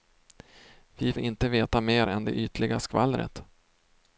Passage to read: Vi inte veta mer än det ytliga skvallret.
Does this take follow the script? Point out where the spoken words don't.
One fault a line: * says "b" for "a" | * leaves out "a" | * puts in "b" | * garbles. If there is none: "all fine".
all fine